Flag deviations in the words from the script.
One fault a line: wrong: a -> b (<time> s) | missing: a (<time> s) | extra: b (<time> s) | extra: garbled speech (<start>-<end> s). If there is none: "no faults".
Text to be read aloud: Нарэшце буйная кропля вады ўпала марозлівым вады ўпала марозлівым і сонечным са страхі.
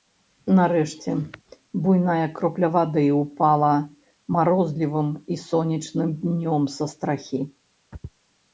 missing: вады ўпала марозлівым (5.1 s)
extra: днём (6.3 s)